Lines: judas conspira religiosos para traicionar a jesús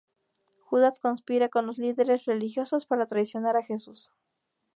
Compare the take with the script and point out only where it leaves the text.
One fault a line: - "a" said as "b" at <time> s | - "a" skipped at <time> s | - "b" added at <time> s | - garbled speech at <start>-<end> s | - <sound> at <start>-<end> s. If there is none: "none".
- "con los líderes" added at 1.5 s